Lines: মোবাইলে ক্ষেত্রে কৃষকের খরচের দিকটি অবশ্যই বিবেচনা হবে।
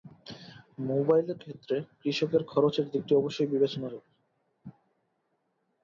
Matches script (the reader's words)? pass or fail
pass